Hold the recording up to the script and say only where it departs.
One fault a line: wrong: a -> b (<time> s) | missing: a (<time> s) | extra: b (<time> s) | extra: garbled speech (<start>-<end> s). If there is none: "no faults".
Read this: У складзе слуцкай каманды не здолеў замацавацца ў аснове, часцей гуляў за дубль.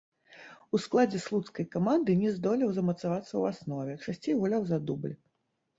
no faults